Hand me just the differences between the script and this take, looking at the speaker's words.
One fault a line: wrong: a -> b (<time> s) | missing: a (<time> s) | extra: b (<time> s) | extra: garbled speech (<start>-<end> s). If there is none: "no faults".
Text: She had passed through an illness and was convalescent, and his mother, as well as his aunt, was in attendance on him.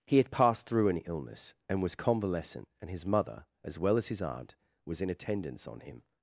wrong: She -> He (0.1 s)